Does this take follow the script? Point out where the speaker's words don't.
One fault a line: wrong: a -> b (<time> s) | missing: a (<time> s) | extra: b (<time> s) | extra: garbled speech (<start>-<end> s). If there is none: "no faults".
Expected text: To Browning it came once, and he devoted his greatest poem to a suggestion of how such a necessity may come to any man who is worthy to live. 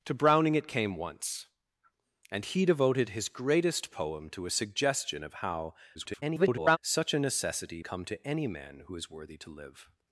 extra: garbled speech (5.9-6.8 s)
missing: may (7.8 s)